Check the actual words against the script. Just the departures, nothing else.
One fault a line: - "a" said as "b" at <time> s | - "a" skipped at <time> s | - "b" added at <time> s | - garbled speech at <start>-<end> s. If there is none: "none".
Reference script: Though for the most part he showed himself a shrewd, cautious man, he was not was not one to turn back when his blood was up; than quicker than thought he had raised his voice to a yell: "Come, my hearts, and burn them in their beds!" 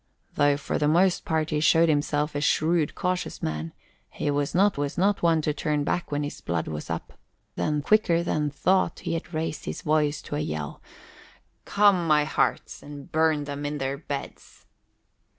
none